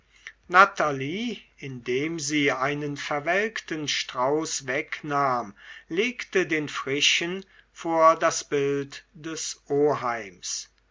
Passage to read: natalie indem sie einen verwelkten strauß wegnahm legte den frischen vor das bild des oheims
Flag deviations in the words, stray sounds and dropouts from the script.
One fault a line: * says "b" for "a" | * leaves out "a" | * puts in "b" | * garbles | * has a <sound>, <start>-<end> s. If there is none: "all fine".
all fine